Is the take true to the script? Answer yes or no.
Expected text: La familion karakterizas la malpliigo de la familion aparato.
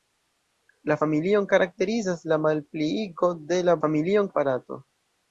yes